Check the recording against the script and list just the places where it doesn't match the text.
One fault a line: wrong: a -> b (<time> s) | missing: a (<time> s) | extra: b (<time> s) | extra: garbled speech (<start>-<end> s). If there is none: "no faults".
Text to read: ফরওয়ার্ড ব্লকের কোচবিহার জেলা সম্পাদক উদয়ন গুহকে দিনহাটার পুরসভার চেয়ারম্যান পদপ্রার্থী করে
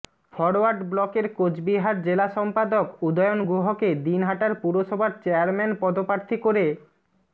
no faults